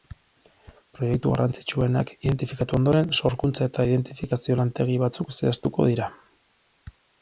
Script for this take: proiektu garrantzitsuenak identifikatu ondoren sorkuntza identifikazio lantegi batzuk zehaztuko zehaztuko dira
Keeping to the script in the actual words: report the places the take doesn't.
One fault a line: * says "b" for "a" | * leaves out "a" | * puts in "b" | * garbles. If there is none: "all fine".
* puts in "eta"
* leaves out "zehaztuko"